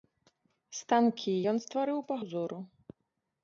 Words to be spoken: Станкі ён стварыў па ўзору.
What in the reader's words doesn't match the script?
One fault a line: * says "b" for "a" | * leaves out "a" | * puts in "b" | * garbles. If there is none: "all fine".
all fine